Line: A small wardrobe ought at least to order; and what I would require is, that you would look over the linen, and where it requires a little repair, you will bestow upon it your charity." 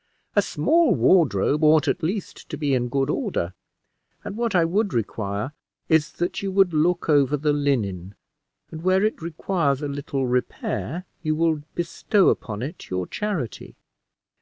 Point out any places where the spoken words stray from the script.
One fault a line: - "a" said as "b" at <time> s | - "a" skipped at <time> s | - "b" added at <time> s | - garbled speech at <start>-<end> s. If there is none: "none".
- "be in good" added at 2.6 s